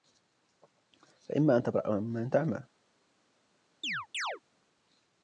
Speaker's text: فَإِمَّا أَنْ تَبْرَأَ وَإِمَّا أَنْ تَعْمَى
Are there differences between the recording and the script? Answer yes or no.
no